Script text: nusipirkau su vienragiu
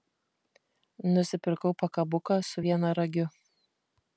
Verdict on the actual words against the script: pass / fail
fail